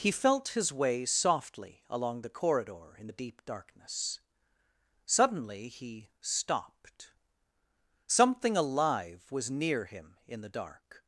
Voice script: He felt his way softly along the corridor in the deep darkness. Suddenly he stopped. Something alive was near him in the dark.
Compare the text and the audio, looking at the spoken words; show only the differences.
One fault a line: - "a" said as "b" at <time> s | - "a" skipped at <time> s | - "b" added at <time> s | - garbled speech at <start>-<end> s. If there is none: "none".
none